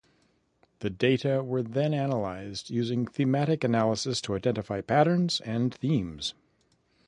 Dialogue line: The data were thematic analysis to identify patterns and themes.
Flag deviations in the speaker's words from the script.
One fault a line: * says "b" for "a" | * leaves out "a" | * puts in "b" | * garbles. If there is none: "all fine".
* puts in "then analyzed using"